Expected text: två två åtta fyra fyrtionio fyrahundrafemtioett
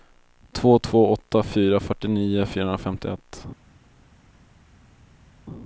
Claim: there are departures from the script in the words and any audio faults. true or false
false